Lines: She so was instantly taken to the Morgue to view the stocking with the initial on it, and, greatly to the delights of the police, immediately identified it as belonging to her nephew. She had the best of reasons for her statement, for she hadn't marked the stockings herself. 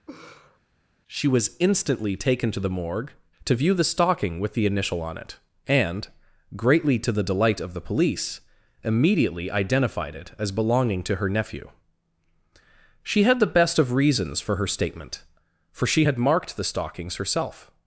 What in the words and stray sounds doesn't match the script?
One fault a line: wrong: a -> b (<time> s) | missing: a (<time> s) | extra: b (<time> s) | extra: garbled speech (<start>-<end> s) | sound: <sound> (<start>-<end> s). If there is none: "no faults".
sound: laugh (0.1-0.6 s)
missing: so (1.3 s)
wrong: delights -> delight (7.2 s)
wrong: hadn't -> had (16.0 s)